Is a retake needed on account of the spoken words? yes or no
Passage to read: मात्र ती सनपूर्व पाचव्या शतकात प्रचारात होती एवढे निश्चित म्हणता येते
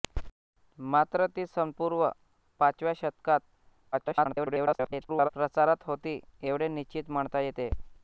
yes